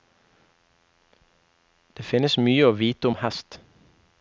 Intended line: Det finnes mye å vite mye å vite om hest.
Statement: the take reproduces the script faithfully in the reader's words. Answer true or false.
false